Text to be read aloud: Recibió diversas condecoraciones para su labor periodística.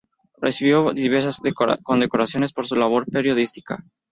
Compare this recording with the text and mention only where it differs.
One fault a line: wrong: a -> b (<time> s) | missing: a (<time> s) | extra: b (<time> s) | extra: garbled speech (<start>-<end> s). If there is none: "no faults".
wrong: para -> por (2.5 s)